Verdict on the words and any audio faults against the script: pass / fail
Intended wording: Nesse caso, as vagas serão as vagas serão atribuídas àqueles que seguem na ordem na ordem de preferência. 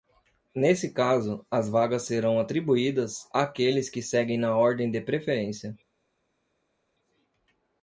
fail